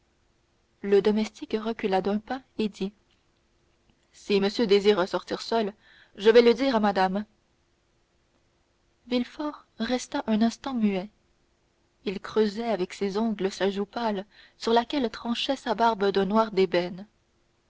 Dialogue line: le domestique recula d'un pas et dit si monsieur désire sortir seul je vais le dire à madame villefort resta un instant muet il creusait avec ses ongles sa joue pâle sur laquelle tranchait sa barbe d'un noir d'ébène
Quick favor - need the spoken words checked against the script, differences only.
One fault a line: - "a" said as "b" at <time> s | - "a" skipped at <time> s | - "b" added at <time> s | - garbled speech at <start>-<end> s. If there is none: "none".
none